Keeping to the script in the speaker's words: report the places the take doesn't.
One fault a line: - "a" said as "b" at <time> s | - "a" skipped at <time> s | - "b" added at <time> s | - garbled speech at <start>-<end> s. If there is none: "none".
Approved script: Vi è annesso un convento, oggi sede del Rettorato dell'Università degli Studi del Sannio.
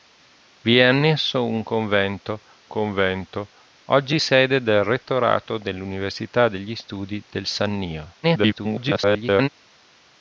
- "convento" added at 2.7 s
- garbled speech at 8.2-9.5 s